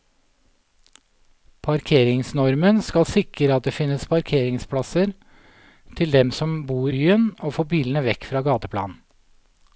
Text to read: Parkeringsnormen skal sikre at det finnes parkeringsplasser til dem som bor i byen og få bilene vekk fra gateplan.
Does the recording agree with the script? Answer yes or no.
no